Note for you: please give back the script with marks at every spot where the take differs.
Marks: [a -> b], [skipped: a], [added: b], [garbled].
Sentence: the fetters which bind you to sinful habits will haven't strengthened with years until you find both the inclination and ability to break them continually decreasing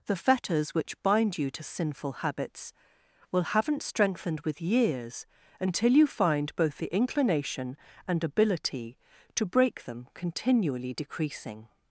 the fetters which bind you to sinful habits will haven't strengthened with years until you find both the inclination and ability to break them continually decreasing